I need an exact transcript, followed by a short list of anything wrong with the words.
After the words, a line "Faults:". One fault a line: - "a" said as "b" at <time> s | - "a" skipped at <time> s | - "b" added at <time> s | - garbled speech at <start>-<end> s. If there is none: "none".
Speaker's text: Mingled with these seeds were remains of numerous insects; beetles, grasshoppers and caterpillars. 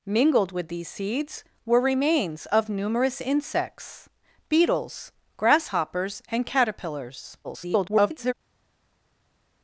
Mingled with these seeds were remains of numerous insects; beetles, grasshoppers and caterpillars. [garbled]
Faults:
- garbled speech at 7.4-8.3 s